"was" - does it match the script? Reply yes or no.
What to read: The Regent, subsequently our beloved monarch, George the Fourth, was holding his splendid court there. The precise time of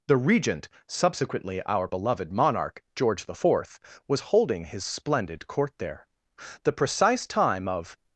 yes